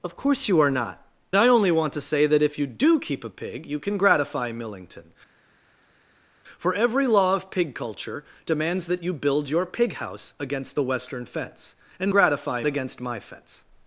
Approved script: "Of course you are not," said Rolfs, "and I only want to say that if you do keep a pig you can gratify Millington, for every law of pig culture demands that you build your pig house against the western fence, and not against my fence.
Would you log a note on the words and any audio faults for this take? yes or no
yes